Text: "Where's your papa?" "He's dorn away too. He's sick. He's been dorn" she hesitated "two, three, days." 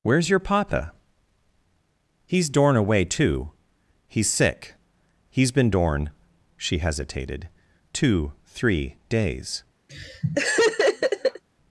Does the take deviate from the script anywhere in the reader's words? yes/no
no